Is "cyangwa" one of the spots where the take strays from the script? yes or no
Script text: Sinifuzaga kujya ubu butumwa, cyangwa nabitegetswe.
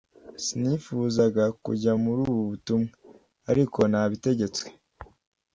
yes